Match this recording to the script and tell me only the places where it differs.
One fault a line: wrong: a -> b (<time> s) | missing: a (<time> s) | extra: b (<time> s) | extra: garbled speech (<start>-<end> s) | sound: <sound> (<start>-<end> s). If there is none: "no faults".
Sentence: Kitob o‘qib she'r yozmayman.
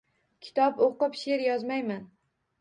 no faults